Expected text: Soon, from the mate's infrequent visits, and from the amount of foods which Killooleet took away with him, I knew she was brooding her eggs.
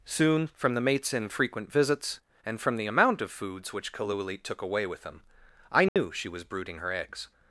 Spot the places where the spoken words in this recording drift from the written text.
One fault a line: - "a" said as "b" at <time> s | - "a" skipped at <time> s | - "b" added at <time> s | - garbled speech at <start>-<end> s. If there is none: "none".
none